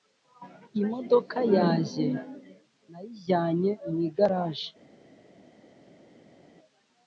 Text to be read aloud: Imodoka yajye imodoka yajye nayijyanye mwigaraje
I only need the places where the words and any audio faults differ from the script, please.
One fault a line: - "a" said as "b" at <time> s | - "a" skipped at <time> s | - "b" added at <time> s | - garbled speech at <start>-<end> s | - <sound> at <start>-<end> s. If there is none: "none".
- "imodoka yajye" skipped at 2.1 s